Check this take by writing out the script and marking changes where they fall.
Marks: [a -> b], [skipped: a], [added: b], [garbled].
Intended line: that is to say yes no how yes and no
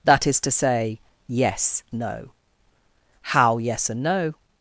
that is to say yes no how yes and no